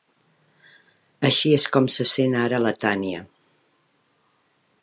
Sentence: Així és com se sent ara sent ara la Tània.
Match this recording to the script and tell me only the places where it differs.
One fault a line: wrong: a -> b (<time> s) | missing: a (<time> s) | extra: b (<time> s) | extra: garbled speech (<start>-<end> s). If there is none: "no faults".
missing: sent ara (2.6 s)